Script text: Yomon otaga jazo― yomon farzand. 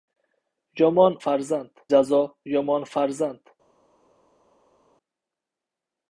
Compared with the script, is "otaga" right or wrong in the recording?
wrong